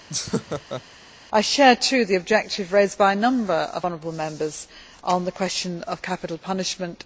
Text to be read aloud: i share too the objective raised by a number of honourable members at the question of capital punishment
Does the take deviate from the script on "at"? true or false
true